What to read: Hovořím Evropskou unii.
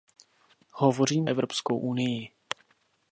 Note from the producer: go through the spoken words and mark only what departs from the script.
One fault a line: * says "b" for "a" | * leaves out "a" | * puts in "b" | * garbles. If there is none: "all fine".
all fine